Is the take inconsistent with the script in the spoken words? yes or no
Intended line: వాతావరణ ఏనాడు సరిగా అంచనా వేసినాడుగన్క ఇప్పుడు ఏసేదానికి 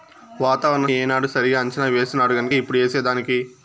no